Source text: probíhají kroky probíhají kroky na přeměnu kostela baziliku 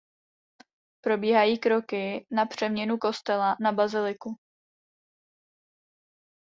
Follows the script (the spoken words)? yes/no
no